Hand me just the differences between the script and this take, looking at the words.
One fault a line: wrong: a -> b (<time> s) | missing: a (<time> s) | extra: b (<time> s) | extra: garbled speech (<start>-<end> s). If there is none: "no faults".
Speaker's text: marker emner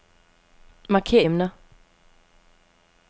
no faults